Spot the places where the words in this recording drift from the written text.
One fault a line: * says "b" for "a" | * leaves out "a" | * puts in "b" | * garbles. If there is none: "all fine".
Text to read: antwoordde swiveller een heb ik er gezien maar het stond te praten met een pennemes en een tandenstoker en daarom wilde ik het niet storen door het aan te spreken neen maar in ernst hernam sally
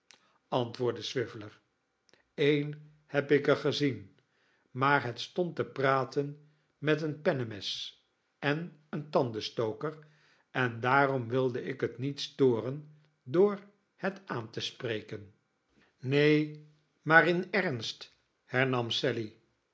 all fine